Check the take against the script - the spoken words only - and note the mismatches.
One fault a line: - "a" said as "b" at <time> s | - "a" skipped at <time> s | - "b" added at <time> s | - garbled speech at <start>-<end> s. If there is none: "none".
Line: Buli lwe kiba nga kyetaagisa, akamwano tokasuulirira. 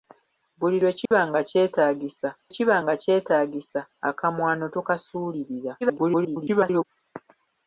- "kiba nga kyetaagisa" added at 2.6 s
- garbled speech at 5.8-6.9 s